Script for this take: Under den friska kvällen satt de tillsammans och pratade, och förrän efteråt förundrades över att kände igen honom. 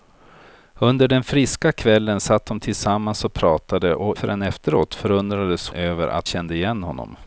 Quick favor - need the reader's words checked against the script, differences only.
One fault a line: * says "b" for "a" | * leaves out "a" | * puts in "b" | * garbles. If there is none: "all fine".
all fine